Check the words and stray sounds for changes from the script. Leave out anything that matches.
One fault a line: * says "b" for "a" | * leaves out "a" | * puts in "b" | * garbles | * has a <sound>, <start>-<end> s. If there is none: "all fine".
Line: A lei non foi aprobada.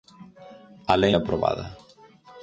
* leaves out "non foi"